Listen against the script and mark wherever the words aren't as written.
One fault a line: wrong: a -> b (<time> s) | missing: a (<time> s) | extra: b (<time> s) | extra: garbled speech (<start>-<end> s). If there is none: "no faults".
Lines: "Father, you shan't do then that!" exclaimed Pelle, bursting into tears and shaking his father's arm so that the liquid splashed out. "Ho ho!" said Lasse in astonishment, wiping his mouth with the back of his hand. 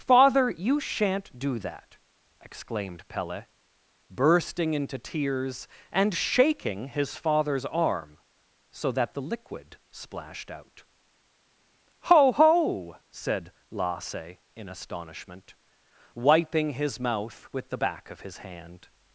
missing: then (1.6 s)